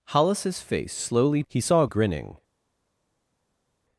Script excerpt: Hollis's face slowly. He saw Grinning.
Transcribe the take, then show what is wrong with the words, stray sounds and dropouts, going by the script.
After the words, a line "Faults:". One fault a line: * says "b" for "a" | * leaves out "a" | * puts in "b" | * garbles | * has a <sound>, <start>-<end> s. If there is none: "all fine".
Hollis's face slowly. He saw Grinning.
Faults:
all fine